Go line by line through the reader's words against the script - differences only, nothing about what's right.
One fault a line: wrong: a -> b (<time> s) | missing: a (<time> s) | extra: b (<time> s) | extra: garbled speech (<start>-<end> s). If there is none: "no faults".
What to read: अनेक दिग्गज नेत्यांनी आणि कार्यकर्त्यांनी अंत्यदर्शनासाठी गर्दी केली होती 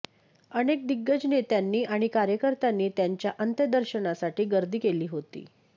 extra: त्यांच्या (3.0 s)